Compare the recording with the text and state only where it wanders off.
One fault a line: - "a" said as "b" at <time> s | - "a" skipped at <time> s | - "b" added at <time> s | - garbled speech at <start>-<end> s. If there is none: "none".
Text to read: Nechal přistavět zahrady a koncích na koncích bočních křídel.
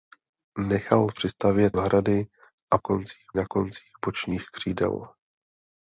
none